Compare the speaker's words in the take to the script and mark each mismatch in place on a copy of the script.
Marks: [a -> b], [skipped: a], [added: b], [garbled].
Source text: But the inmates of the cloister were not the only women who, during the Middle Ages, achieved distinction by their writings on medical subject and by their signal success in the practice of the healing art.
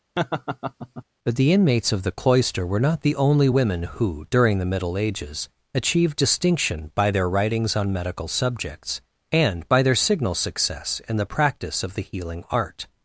But the inmates of the cloister were not the only women who, during the Middle Ages, achieved distinction by their writings on medical [subject -> subjects] and by their signal success in the practice of the healing art.